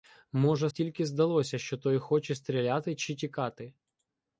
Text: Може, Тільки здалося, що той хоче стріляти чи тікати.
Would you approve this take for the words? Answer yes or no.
yes